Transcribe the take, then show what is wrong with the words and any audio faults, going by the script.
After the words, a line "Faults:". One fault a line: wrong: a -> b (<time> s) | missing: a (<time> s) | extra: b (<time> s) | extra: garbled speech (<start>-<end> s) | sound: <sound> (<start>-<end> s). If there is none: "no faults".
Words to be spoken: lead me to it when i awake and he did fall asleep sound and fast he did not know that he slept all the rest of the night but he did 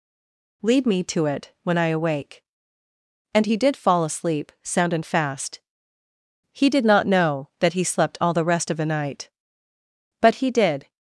lead me to it when i awake and he did fall asleep sound and fast he did not know that he slept all the rest of the night but he did
Faults:
no faults